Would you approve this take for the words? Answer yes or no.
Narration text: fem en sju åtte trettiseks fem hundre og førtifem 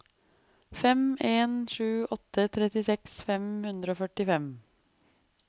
yes